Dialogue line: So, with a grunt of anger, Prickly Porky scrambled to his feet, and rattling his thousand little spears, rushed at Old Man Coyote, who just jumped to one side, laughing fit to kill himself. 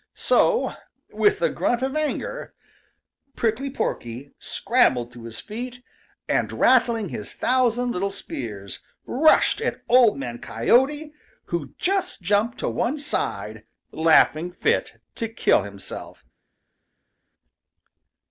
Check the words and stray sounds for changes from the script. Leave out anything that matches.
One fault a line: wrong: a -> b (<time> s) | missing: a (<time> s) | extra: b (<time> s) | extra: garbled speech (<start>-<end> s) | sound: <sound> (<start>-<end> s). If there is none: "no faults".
no faults